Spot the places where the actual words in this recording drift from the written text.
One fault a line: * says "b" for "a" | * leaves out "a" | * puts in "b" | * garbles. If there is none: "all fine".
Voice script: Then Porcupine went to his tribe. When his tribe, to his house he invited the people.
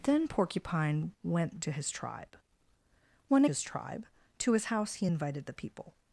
all fine